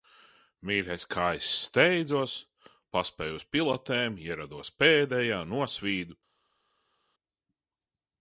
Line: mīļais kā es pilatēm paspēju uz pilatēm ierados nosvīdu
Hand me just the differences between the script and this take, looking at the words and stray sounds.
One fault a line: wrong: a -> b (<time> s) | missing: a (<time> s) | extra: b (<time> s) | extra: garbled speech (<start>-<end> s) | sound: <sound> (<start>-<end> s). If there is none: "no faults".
wrong: pilatēm -> steidzos (1.6 s)
extra: pēdējā (4.8 s)